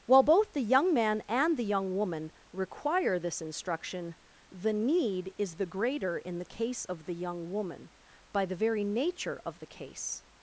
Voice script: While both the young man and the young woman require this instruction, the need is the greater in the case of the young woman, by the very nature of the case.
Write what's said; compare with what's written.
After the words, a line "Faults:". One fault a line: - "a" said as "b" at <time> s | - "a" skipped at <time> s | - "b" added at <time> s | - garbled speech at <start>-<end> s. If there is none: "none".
While both the young man and the young woman require this instruction, the need is the greater in the case of the young woman, by the very nature of the case.
Faults:
none